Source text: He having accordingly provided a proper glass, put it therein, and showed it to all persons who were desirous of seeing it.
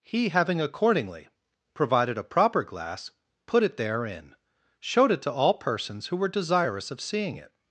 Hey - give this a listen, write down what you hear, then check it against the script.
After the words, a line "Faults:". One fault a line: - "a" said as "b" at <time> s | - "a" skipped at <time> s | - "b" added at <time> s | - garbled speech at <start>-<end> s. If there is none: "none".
He having accordingly provided a proper glass, put it therein, showed it to all persons who were desirous of seeing it.
Faults:
- "and" skipped at 4.3 s